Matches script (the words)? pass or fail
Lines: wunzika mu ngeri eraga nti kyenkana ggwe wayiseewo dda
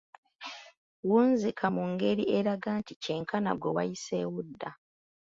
pass